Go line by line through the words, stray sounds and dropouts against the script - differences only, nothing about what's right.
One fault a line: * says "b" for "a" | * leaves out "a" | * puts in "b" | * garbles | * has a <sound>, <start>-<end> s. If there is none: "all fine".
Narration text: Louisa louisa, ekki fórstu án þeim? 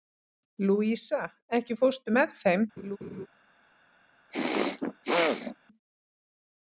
* leaves out "louisa"
* says "með" for "án"
* has a laugh, 2.8-3.3 s
* has a throat clearing, 4.3-5.6 s